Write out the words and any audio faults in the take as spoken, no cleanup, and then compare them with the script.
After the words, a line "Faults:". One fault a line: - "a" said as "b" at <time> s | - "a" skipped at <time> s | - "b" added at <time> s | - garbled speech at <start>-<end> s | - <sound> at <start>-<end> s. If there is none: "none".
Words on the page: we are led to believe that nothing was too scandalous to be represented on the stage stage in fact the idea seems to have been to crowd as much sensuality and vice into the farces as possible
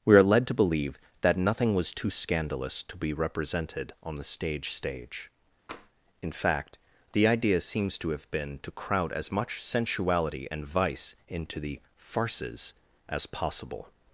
we are led to believe that nothing was too scandalous to be represented on the stage stage in fact the idea seems to have been to crowd as much sensuality and vice into the farces as possible
Faults:
- tap at 5.7-5.9 s